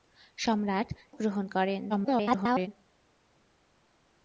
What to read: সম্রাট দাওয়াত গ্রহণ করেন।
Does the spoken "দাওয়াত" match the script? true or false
false